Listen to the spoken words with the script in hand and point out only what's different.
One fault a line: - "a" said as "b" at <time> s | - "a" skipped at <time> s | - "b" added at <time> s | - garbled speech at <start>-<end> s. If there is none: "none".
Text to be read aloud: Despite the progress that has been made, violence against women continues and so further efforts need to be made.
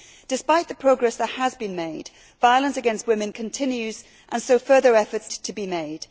- "need" skipped at 5.3 s